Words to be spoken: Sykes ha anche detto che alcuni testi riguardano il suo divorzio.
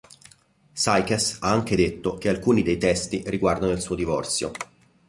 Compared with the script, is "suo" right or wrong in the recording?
right